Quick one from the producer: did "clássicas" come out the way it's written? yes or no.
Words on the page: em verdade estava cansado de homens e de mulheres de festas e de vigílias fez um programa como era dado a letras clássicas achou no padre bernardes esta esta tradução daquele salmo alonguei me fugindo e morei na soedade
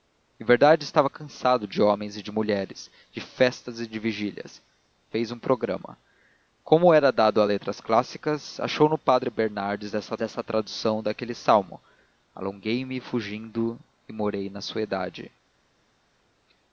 yes